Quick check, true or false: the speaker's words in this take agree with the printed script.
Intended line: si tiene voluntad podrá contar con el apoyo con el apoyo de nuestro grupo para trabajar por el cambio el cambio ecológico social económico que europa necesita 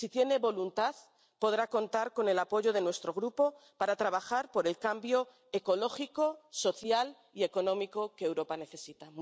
false